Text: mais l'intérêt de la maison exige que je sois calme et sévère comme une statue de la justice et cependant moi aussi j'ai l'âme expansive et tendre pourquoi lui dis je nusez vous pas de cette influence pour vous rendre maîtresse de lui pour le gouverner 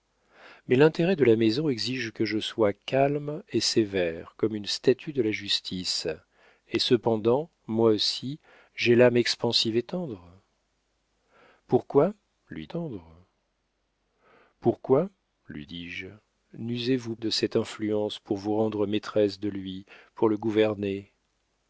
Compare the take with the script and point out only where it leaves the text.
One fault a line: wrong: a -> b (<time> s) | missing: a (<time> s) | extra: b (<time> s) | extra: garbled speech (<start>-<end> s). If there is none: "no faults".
extra: tendre pourquoi lui (12.6 s)
missing: pas (17.2 s)